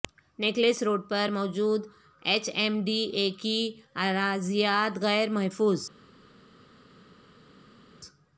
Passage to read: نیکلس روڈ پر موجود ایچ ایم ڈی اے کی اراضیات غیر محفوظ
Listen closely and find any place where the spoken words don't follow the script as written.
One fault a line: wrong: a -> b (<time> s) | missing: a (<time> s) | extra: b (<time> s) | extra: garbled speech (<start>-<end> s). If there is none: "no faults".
no faults